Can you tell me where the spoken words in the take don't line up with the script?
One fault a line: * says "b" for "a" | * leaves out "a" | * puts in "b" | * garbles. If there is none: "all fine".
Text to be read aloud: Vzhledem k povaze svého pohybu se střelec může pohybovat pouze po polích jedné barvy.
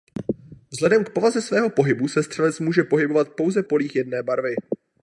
* leaves out "po"